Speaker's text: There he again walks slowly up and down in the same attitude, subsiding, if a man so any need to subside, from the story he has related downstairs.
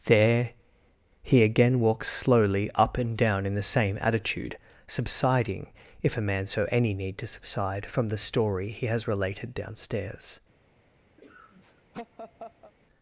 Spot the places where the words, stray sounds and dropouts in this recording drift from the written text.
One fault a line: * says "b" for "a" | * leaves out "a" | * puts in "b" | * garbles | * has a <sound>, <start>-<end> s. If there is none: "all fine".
* has a laugh, 11.2-12.7 s